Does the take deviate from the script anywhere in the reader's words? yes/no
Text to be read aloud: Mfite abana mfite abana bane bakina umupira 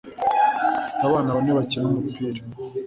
yes